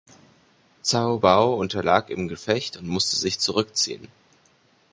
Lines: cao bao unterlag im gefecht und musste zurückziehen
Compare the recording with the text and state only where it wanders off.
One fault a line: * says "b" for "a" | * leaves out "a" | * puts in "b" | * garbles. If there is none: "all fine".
* puts in "sich"